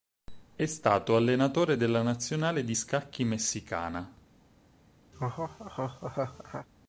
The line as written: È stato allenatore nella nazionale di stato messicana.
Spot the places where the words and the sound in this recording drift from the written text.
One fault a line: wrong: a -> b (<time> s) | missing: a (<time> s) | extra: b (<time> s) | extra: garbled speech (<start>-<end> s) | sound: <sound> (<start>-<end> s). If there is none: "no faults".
wrong: nella -> della (1.8 s)
wrong: stato -> scacchi (2.7 s)
sound: laugh (5.1-6.7 s)